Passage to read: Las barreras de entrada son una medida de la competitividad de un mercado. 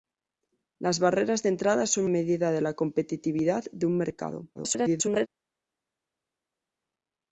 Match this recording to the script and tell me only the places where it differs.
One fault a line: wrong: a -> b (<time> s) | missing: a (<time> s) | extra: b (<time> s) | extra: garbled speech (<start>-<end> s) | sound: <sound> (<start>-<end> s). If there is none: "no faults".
missing: una (2.0 s)
extra: garbled speech (4.5-5.3 s)